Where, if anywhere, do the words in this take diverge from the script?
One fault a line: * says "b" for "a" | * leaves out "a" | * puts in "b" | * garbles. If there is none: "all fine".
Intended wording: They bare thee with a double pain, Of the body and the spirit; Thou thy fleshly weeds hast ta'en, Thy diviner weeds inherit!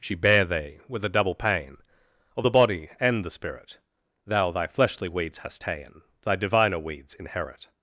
* says "She" for "They"